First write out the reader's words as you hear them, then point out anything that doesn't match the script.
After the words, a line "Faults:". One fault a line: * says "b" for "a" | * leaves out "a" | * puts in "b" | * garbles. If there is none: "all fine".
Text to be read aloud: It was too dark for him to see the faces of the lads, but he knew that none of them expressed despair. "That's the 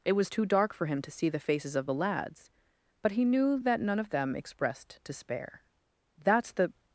It was too dark for him to see the faces of the lads, but he knew that none of them expressed despair. "That's the
Faults:
all fine